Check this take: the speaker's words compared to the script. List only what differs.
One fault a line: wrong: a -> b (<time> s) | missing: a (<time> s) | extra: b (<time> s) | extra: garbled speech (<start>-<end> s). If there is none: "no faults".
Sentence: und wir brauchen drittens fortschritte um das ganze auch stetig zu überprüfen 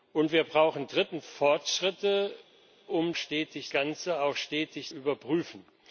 wrong: das -> stetig (3.2 s)
missing: zu (4.9 s)